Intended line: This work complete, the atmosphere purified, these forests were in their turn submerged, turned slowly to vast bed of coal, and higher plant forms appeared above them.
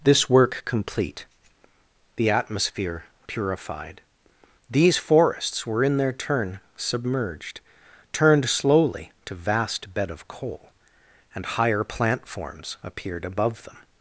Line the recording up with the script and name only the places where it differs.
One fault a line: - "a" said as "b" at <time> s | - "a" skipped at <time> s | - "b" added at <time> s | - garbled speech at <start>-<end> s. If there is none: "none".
none